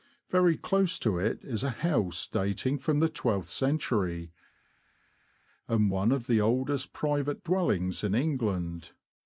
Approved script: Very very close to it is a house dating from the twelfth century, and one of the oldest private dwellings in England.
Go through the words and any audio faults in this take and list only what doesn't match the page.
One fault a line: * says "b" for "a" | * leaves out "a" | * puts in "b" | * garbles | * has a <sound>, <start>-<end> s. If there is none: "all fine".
* leaves out "very"